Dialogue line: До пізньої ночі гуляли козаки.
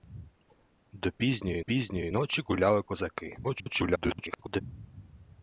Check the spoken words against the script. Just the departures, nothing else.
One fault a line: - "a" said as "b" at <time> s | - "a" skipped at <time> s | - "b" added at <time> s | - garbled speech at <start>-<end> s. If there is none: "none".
- "пізньої" added at 1.6 s
- garbled speech at 3.4-4.6 s